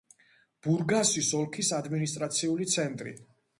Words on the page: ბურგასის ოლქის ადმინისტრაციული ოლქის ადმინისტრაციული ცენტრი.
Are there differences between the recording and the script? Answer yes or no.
yes